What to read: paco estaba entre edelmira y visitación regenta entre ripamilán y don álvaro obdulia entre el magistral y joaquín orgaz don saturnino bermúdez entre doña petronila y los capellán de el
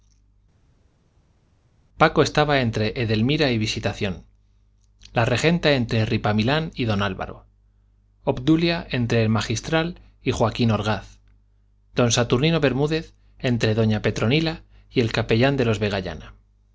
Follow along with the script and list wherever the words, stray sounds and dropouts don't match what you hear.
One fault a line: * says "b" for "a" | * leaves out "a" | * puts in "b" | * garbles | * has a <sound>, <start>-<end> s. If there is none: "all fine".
* puts in "la"
* says "el" for "los"
* says "los" for "el"